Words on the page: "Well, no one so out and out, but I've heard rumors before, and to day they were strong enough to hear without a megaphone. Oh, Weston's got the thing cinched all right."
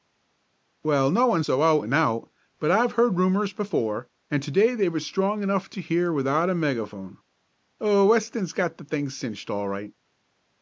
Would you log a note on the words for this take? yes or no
no